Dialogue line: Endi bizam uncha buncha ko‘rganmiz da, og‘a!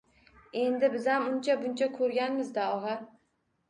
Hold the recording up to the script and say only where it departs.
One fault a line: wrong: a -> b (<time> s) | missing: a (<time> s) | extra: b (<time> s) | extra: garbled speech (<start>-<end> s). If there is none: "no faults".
no faults